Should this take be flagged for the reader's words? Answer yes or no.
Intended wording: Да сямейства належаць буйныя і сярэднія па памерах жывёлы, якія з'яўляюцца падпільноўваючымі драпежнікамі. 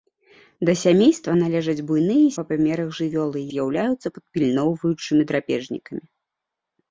yes